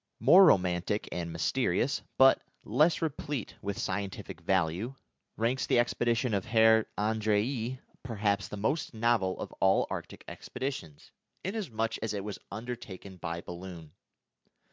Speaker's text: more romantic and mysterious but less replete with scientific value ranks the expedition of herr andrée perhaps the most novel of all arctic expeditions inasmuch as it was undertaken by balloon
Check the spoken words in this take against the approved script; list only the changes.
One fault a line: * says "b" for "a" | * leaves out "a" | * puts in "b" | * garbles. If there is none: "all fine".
all fine